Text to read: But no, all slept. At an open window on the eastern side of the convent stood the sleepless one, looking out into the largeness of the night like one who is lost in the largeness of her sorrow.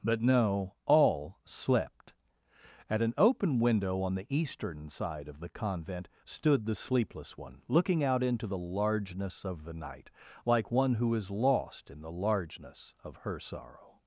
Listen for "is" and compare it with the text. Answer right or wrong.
right